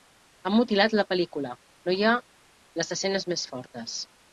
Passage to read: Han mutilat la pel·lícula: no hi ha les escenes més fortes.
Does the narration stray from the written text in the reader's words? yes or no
no